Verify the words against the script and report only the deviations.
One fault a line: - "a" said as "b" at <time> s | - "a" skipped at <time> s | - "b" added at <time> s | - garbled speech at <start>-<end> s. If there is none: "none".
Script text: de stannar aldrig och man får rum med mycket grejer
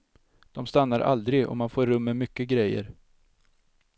none